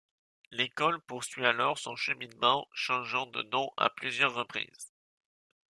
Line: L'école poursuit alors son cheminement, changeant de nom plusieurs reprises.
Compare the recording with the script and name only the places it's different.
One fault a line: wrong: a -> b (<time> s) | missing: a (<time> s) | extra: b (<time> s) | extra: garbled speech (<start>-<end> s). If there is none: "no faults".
extra: à (3.8 s)